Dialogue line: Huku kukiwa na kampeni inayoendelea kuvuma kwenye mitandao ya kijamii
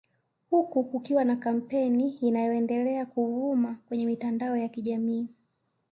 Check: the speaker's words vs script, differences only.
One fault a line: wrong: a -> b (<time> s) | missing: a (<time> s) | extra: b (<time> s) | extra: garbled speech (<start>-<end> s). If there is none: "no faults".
no faults